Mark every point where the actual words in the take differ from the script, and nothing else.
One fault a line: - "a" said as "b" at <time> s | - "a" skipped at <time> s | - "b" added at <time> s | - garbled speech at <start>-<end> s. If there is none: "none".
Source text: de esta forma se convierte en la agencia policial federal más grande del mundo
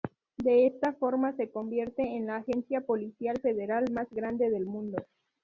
none